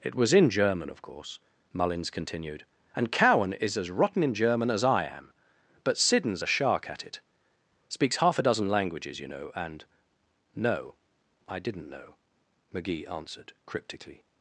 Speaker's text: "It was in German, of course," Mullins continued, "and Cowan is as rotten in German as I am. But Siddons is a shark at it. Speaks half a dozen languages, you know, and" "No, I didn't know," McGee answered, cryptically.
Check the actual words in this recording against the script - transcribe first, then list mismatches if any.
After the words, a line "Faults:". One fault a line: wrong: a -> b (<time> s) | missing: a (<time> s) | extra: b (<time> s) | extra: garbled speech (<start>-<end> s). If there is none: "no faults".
"It was in German, of course," Mullins continued, "and Cowan is as rotten in German as I am. But Siddons a shark at it. Speaks half a dozen languages, you know, and" "No, I didn't know," McGee answered, cryptically.
Faults:
missing: is (6.4 s)